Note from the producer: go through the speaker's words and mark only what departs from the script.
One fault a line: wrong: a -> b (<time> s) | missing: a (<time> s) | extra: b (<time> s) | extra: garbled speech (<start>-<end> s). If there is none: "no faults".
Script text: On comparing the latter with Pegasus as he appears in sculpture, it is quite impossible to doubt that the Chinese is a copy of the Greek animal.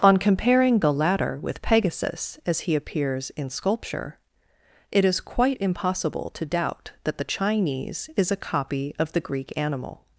no faults